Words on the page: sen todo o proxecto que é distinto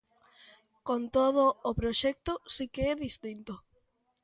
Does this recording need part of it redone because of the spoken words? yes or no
yes